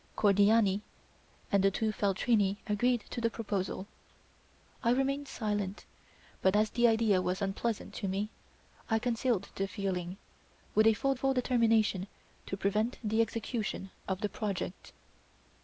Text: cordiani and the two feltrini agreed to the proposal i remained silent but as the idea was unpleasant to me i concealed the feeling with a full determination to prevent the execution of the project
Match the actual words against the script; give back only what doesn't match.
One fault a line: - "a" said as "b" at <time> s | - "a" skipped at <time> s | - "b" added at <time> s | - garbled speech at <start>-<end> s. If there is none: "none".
- "full" added at 11.1 s